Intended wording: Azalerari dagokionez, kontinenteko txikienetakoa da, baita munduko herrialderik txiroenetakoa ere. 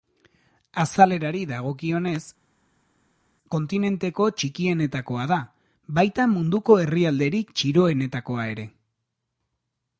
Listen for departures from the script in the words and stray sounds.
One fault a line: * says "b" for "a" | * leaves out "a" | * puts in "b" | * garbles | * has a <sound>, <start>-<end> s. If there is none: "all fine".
all fine